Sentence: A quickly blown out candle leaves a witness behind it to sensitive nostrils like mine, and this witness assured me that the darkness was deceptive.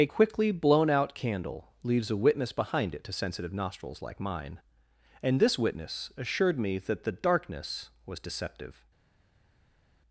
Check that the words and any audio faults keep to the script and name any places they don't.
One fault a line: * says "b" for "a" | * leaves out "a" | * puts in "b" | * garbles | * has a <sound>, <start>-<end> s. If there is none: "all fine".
all fine